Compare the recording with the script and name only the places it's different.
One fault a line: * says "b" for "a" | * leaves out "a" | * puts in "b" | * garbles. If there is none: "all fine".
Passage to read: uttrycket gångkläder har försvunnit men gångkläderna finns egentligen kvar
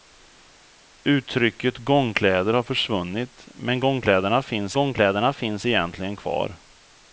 * puts in "gångkläderna finns"